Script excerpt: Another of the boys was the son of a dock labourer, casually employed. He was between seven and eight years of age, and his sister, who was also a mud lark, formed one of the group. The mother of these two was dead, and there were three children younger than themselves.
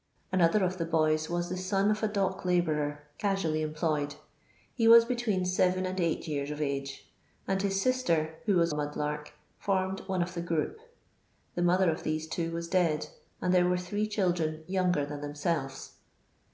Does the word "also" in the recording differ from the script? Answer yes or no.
yes